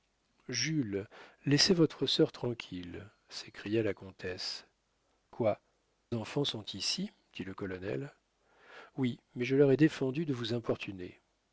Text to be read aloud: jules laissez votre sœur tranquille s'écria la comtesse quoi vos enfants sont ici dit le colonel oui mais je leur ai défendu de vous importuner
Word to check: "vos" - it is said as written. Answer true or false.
false